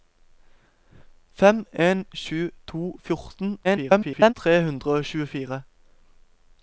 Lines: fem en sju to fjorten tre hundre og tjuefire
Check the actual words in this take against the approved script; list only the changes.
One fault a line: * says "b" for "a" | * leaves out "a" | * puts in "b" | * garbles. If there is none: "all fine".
* garbles